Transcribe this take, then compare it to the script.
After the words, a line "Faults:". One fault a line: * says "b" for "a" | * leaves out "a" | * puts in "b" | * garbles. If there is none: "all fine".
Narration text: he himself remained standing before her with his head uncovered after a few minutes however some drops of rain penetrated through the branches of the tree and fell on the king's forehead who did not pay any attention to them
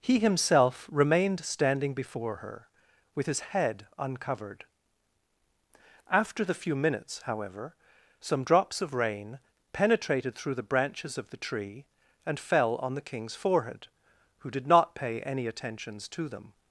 he himself remained standing before her with his head uncovered after the few minutes however some drops of rain penetrated through the branches of the tree and fell on the king's forehead who did not pay any attentions to them
Faults:
* says "the" for "a"
* says "attentions" for "attention"